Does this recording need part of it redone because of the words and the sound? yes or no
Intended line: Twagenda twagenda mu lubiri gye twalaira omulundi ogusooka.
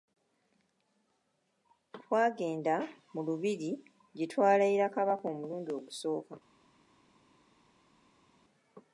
yes